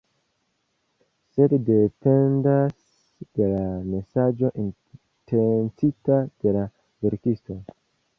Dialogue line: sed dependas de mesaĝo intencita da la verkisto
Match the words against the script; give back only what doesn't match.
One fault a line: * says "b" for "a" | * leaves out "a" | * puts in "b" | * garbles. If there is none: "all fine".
* puts in "la"
* says "de" for "da"